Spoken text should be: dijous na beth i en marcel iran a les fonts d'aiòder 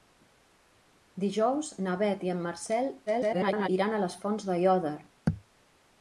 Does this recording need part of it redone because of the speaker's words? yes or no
yes